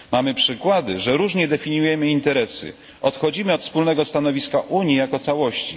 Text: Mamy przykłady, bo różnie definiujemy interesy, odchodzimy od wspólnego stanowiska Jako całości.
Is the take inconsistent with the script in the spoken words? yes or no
yes